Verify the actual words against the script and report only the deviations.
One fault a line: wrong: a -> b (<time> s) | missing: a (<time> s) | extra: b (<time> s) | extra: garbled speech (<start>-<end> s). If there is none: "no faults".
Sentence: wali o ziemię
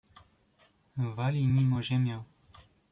extra: nim (1.4 s)